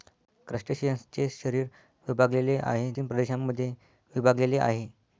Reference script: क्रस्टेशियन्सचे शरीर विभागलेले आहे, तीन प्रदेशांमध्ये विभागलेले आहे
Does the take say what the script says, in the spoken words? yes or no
yes